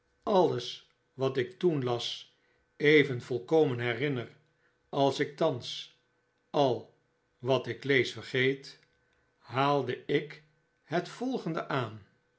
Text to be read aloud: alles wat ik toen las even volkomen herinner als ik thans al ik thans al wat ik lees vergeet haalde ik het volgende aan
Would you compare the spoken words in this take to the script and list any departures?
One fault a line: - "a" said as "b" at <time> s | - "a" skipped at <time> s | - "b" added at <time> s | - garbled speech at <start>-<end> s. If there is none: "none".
- "ik thans al" skipped at 6.9 s